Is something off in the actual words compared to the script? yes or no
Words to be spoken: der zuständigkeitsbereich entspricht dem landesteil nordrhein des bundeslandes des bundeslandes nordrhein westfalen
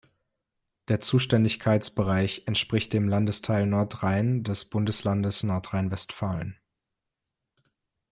yes